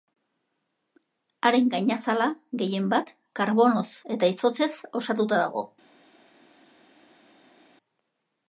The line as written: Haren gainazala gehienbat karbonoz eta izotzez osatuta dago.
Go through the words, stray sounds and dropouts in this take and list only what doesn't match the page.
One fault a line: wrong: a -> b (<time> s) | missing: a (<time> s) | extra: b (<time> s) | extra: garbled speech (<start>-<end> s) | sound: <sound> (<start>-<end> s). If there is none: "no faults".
no faults